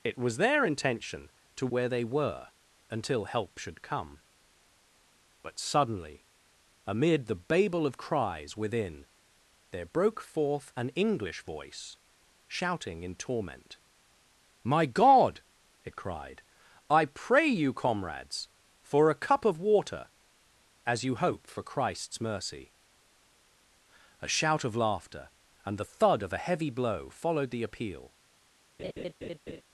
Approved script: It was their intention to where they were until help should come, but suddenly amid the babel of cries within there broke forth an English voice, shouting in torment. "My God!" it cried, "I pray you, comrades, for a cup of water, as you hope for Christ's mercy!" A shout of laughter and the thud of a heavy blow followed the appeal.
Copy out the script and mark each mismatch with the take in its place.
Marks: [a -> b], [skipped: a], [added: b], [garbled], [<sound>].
It was their intention to where they were until help should come, but suddenly amid the babel of cries within there broke forth an English voice, shouting in torment. "My God!" it cried, "I pray you, comrades, for a cup of water, as you hope for Christ's mercy!" A shout of laughter and the thud of a heavy blow followed the appeal. [laugh]